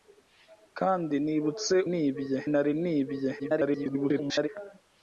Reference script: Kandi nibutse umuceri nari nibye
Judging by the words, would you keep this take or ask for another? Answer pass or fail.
fail